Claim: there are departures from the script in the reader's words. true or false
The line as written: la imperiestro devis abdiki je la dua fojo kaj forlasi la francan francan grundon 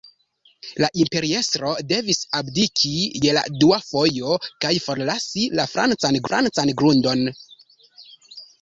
false